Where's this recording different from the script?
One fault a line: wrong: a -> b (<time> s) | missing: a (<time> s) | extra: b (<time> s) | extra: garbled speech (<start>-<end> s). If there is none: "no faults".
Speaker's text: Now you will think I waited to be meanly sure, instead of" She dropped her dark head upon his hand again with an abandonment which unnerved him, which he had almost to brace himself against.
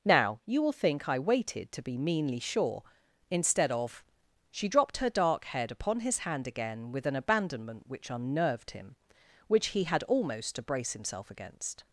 no faults